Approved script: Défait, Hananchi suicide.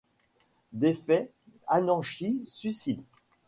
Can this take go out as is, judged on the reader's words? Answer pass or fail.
pass